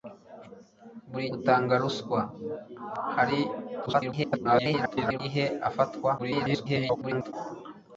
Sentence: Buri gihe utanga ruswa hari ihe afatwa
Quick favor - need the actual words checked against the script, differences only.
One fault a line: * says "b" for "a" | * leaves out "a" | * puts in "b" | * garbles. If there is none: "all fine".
* leaves out "gihe"
* garbles
* garbles